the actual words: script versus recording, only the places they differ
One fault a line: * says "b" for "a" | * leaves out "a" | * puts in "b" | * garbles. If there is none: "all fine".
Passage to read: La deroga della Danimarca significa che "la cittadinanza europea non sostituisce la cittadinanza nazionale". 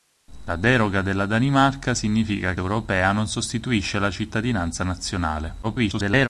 * leaves out "che la cittadinanza"
* garbles